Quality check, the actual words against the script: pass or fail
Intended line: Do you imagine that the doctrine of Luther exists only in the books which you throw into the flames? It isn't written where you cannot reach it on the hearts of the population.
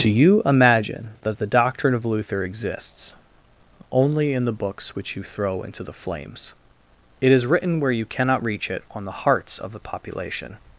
fail